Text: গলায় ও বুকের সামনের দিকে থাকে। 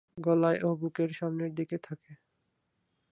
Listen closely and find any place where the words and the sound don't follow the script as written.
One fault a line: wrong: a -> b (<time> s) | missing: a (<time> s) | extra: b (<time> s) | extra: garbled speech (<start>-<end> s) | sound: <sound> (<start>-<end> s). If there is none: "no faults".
no faults